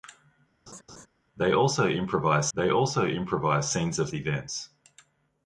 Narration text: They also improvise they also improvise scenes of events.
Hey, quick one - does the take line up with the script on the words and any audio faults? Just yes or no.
no